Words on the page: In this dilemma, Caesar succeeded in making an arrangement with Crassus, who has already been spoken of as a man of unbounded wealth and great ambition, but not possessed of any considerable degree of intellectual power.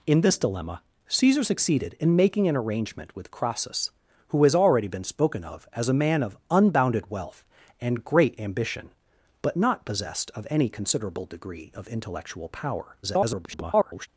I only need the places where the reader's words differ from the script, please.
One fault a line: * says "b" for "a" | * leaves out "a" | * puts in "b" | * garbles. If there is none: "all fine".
* garbles